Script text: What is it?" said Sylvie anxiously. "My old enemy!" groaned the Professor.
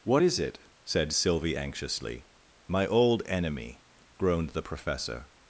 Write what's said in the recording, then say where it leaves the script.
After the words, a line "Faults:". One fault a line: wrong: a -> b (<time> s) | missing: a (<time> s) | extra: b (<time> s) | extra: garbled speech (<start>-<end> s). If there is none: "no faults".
What is it?" said Sylvie anxiously. "My old enemy!" groaned the Professor.
Faults:
no faults